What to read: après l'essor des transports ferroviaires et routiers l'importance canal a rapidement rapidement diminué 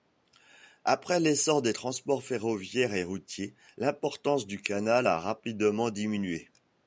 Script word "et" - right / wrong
right